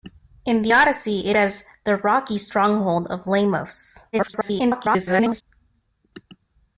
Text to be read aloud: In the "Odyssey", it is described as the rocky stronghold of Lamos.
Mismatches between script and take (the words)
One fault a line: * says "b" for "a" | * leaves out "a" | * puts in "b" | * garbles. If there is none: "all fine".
* leaves out "is described"
* garbles